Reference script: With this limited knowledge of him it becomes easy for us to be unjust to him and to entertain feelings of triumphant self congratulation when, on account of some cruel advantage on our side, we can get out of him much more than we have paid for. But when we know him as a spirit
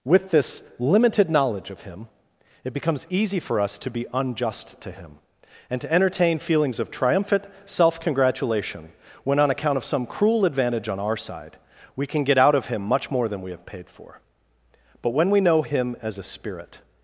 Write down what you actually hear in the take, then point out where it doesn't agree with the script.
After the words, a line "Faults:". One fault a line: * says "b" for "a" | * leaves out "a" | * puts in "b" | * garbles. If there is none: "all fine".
With this limited knowledge of him it becomes easy for us to be unjust to him and to entertain feelings of triumphant self congratulation when, on account of some cruel advantage on our side, we can get out of him much more than we have paid for. But when we know him as a spirit
Faults:
all fine